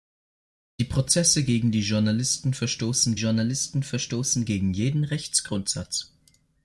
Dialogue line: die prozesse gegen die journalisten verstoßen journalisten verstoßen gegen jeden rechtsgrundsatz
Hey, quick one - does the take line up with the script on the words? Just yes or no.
yes